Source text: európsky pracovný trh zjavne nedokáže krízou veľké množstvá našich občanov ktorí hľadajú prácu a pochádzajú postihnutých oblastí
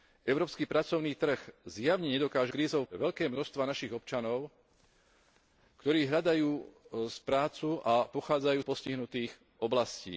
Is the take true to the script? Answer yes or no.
yes